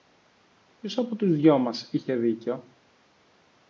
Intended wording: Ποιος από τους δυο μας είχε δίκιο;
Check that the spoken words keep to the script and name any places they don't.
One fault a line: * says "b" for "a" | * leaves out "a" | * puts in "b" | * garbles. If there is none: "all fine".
all fine